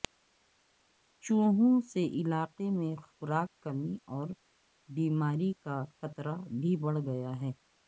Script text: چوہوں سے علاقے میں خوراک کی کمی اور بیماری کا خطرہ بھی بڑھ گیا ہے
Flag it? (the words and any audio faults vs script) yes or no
yes